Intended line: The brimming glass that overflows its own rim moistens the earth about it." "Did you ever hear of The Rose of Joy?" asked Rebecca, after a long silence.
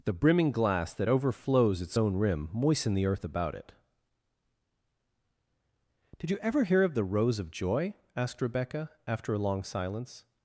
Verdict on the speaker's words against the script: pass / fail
fail